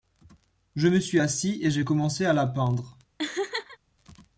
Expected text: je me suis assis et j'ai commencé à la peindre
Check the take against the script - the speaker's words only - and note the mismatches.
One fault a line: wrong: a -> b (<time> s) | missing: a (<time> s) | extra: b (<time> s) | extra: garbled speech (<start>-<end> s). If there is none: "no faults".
no faults